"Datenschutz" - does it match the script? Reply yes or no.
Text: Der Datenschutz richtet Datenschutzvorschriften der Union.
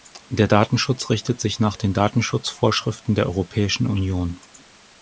yes